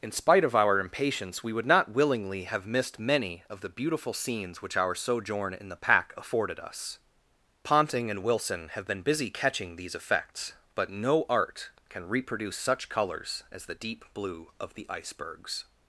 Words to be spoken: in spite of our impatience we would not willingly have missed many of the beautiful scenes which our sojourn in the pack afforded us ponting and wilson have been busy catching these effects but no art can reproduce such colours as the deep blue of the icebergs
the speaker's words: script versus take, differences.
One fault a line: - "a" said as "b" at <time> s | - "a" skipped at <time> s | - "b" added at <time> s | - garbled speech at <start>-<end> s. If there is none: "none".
none